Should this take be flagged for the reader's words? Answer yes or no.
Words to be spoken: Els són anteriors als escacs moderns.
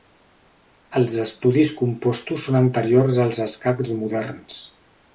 yes